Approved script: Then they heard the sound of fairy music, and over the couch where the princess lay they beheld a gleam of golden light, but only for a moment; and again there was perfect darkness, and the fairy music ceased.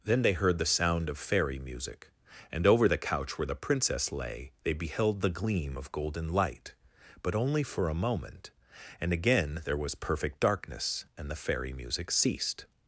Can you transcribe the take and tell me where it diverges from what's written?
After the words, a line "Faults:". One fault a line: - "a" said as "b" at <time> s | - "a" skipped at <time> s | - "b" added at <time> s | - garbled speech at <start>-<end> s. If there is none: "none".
Then they heard the sound of fairy music, and over the couch where the princess lay they beheld the gleam of golden light, but only for a moment; and again there was perfect darkness, and the fairy music ceased.
Faults:
- "a" said as "the" at 5.2 s